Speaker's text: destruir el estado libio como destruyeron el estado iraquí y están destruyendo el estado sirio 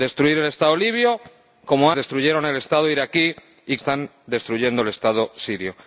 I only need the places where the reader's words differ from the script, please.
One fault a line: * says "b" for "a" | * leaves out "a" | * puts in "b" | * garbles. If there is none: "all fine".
all fine